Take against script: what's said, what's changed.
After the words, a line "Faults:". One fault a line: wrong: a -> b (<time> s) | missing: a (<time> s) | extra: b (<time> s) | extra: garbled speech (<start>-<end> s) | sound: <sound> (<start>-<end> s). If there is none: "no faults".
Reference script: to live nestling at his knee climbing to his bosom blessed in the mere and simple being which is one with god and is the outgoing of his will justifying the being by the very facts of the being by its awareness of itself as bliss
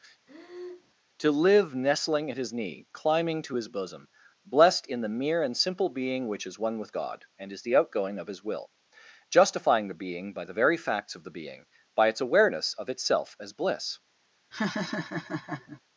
to live nestling at his knee climbing to his bosom blessed in the mere and simple being which is one with god and is the outgoing of his will justifying the being by the very facts of the being by its awareness of itself as bliss
Faults:
sound: breath (0.3-0.9 s)
sound: laugh (14.5-15.8 s)